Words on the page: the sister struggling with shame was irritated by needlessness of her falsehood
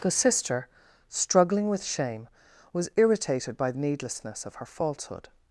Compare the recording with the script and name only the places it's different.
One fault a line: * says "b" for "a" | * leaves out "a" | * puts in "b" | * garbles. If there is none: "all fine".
all fine